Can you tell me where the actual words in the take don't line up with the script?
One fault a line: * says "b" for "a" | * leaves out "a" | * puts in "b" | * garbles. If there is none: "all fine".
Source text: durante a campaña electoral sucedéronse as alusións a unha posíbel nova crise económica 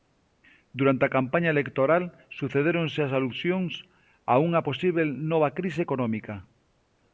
all fine